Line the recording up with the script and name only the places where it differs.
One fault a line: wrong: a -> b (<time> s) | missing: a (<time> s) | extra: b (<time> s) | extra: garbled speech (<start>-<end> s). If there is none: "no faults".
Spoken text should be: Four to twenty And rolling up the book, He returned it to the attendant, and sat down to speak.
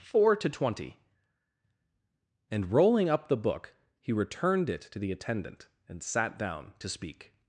no faults